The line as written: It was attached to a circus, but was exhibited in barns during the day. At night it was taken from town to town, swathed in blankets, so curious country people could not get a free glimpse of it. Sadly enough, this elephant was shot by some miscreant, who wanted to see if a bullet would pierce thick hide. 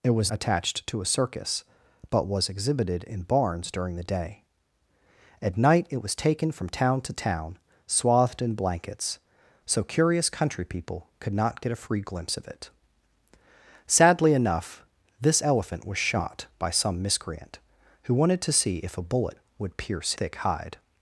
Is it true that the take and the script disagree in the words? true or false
false